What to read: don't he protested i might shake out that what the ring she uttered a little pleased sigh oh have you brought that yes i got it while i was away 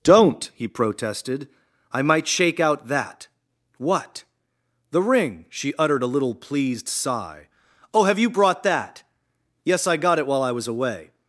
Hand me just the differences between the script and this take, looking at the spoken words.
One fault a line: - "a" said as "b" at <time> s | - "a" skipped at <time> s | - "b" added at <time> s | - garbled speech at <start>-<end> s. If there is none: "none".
none